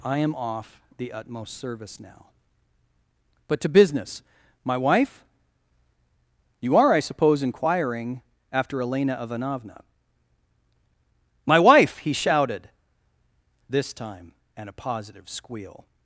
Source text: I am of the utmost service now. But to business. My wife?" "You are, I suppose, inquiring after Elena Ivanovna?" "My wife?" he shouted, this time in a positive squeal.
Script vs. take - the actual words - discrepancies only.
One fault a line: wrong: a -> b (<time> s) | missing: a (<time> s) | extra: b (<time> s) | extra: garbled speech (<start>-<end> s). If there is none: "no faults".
wrong: of -> off (0.3 s)
wrong: in -> and (14.6 s)